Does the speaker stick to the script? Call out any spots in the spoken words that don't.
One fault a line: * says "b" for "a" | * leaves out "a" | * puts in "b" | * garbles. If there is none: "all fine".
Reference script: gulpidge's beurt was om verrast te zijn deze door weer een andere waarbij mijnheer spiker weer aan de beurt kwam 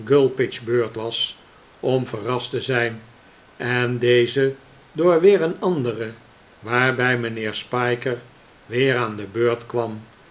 * puts in "en"